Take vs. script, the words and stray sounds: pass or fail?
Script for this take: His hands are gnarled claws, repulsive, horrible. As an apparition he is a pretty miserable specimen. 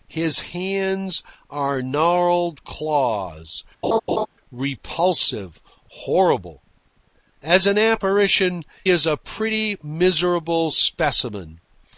fail